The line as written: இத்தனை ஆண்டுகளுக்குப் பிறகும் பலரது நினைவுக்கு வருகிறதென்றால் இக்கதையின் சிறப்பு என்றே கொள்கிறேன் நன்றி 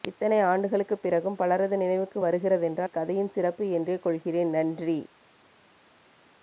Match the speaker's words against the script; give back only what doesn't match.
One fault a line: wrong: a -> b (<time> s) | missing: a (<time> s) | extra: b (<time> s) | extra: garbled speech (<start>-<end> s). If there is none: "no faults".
no faults